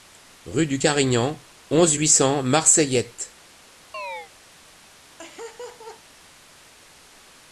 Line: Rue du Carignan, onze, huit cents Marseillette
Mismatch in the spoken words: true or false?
false